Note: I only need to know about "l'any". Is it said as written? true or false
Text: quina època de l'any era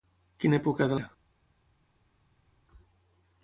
false